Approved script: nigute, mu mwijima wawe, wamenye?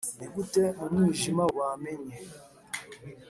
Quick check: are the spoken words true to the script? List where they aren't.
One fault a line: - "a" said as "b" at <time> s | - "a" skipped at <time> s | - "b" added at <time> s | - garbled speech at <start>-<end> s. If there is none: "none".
- "wawe" skipped at 1.4 s